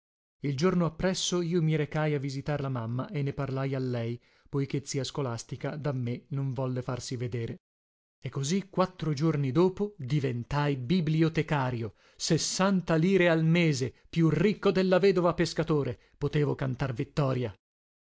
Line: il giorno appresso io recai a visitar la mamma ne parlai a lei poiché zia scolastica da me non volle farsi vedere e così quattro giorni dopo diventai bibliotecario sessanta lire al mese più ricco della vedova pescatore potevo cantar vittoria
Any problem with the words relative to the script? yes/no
yes